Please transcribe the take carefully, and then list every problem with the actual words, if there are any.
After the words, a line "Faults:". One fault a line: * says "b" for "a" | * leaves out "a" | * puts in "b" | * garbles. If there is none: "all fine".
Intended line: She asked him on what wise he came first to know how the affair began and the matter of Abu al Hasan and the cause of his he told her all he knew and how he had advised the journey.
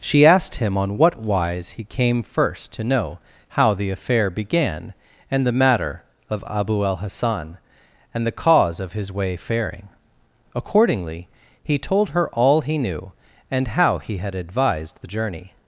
She asked him on what wise he came first to know how the affair began and the matter of Abu al Hasan and the cause of his way faring: accordingly he told her all he knew and how he had advised the journey.
Faults:
* puts in "way faring accordingly"